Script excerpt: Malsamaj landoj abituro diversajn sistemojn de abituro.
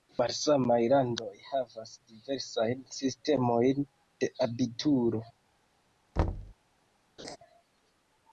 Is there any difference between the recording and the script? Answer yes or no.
yes